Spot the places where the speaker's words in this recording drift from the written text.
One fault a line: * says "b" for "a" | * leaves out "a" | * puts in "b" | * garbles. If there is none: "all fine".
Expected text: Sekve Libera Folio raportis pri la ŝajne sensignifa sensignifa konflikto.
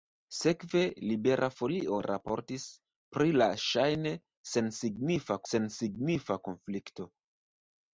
all fine